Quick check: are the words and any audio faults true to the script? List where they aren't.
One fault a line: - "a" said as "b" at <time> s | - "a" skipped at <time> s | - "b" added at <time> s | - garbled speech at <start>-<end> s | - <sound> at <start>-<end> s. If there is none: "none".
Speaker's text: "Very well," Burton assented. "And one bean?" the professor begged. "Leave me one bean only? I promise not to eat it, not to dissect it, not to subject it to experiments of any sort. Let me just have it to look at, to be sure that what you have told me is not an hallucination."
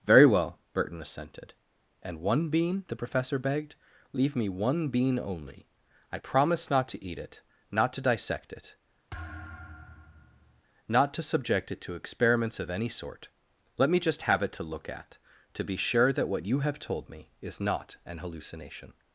- thud at 9.1-10.6 s